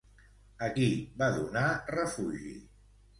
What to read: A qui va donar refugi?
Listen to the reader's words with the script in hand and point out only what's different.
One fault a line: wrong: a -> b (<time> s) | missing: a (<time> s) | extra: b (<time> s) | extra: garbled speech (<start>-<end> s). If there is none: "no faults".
no faults